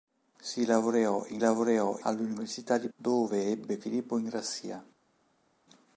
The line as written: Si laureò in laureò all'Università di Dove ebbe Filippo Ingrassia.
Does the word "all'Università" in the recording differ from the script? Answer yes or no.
no